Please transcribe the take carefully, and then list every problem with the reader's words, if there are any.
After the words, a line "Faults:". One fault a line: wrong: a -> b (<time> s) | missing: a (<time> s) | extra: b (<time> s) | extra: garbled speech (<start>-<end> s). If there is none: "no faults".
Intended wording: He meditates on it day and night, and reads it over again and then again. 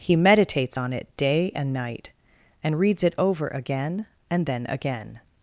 He meditates on it day and night, and reads it over again and then again.
Faults:
no faults